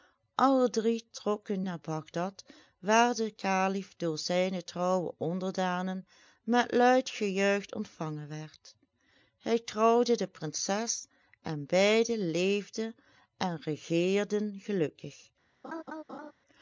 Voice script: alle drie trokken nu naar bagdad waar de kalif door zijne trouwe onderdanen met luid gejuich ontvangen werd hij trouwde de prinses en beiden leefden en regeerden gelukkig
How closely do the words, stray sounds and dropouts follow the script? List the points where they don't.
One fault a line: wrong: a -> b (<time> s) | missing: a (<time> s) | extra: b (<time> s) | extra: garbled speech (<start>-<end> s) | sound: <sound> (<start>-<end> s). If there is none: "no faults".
missing: nu (1.6 s)
sound: laugh (15.6-16.3 s)